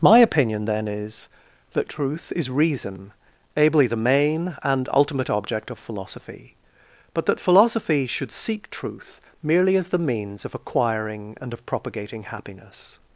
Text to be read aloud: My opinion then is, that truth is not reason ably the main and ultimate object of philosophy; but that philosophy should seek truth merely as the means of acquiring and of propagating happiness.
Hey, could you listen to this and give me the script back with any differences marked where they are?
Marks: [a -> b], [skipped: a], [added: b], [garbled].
My opinion then is, that truth is [skipped: not] reason ably the main and ultimate object of philosophy; but that philosophy should seek truth merely as the means of acquiring and of propagating happiness.